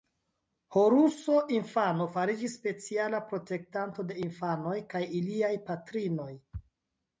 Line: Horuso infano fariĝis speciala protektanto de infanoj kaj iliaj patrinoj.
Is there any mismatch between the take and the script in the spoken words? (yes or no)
no